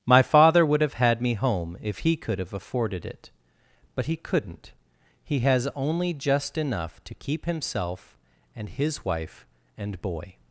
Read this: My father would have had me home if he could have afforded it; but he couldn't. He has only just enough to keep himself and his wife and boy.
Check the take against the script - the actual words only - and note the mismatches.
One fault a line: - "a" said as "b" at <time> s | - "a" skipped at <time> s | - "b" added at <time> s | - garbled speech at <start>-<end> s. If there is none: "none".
none